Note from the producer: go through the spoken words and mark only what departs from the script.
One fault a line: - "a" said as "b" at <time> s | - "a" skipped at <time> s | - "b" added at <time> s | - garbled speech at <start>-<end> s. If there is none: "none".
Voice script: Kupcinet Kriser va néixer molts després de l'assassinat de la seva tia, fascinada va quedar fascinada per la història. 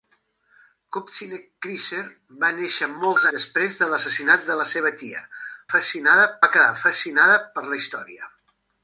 none